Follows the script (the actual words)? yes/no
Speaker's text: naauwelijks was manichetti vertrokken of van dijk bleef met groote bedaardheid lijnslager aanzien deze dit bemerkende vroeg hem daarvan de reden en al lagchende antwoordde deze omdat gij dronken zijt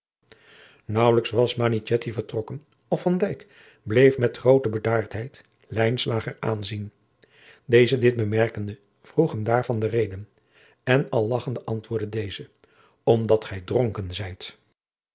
yes